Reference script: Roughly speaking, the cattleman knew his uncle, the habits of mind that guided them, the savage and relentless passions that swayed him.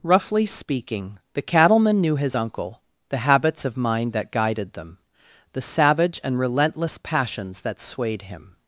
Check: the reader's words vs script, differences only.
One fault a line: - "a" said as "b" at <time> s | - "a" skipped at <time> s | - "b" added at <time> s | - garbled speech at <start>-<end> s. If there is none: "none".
none